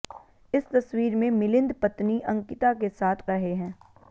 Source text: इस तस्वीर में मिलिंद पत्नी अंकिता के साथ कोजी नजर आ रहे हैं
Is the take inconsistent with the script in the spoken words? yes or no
yes